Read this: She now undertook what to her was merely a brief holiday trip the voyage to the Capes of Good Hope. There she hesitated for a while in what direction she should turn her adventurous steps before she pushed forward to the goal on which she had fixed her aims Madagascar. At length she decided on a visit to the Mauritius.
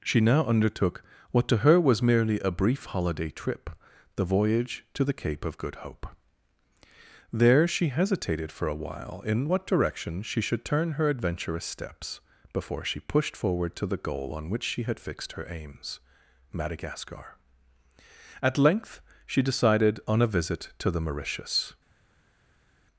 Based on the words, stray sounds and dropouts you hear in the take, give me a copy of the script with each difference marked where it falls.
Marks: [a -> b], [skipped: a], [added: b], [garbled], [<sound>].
She now undertook what to her was merely a brief holiday trip the voyage to the [Capes -> Cape] of Good Hope. There she hesitated for a while in what direction she should turn her adventurous steps before she pushed forward to the goal on which she had fixed her aims Madagascar. At length she decided on a visit to the Mauritius.